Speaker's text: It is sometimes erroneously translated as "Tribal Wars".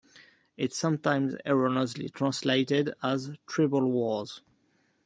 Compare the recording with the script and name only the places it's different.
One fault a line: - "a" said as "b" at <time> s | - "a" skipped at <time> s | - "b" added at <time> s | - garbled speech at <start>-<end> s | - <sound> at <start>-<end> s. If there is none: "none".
none